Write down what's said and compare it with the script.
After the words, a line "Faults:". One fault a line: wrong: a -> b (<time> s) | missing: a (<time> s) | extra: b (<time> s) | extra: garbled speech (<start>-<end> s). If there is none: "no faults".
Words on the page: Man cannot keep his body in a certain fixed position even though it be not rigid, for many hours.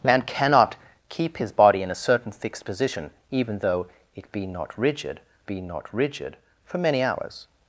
Man cannot keep his body in a certain fixed position even though it be not rigid be not rigid, for many hours.
Faults:
extra: be not rigid (5.5 s)